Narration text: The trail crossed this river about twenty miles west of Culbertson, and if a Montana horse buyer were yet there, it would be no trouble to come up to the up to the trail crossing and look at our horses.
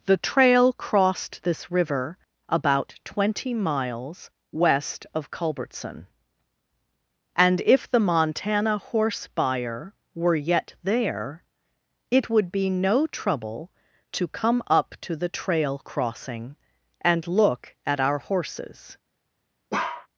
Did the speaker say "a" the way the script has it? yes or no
no